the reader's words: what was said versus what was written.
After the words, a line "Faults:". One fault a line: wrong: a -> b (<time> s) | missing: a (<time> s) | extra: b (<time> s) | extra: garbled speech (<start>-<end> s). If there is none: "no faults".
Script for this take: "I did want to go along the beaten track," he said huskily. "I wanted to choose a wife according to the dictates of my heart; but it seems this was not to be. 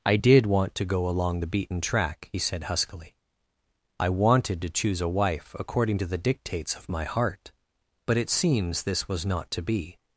"I did want to go along the beaten track," he said huskily. "I wanted to choose a wife according to the dictates of my heart; but it seems this was not to be.
Faults:
no faults